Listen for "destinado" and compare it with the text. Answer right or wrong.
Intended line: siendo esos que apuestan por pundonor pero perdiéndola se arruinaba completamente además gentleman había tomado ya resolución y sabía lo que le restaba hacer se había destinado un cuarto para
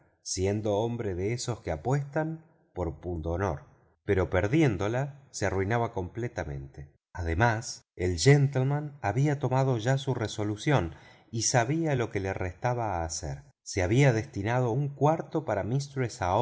right